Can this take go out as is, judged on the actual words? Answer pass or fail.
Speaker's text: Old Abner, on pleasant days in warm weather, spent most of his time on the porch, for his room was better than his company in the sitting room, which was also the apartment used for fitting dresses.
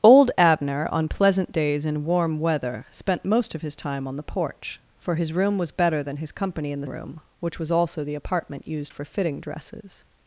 fail